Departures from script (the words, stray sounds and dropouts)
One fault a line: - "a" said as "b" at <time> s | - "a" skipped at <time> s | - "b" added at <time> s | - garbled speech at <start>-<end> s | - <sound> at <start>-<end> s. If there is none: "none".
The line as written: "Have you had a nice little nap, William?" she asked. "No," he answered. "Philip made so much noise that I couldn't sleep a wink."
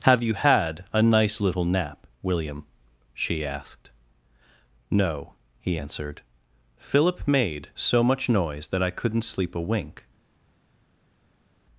none